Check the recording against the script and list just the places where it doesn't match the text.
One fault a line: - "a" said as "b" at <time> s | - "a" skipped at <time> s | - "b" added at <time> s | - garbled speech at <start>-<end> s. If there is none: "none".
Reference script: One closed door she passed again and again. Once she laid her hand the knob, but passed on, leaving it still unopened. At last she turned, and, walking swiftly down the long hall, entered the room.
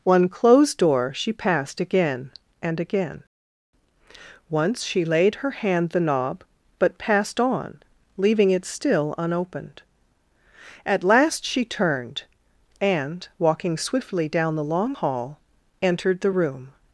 none